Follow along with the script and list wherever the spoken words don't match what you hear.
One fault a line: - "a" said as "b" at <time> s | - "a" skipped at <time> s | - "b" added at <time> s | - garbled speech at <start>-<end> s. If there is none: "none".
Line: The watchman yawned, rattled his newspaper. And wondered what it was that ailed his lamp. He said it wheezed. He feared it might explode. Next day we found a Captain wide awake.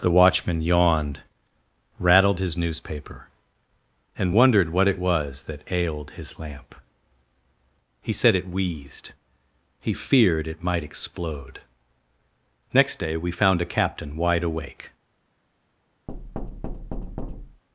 none